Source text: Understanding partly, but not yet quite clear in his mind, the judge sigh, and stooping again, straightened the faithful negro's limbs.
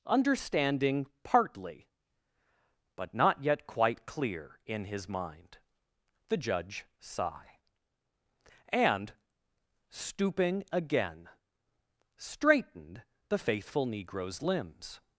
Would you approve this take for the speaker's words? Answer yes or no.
yes